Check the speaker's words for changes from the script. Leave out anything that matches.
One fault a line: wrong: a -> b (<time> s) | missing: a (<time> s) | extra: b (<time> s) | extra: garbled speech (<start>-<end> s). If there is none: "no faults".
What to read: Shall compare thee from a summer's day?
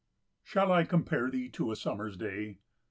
extra: I (0.7 s)
wrong: from -> to (1.5 s)